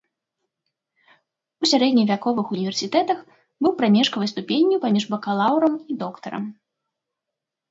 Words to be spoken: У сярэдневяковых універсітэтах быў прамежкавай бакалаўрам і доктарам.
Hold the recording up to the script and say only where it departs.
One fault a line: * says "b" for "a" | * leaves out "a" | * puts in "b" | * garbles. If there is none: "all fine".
* puts in "ступенню паміж"